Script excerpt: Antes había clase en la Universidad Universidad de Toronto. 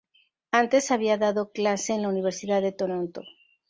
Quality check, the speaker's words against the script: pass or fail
fail